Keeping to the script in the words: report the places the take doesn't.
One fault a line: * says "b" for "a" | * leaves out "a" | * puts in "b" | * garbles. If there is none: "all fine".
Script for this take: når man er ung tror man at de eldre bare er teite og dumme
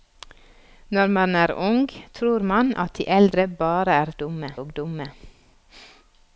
* says "dumme" for "teite"